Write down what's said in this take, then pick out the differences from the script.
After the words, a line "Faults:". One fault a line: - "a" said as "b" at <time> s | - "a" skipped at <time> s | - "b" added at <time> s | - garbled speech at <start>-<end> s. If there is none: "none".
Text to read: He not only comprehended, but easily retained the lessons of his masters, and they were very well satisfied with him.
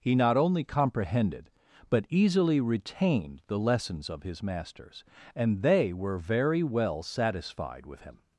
He not only comprehended, but easily retained the lessons of his masters, and they were very well satisfied with him.
Faults:
none